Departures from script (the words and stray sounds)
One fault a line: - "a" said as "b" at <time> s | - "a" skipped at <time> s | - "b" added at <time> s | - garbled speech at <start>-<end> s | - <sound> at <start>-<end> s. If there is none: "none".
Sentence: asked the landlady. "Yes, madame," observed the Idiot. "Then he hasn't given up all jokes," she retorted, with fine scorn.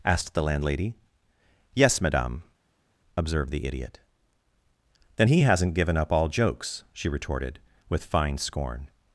none